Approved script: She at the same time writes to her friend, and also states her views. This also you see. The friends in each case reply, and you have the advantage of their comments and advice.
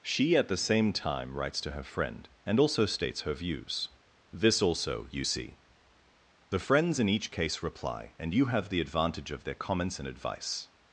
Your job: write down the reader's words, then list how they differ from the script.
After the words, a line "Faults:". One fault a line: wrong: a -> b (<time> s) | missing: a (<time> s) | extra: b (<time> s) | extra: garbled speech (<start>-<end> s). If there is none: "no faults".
She at the same time writes to her friend, and also states her views. This also you see. The friends in each case reply, and you have the advantage of their comments and advice.
Faults:
no faults